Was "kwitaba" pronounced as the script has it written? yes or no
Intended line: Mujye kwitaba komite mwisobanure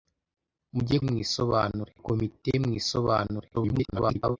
no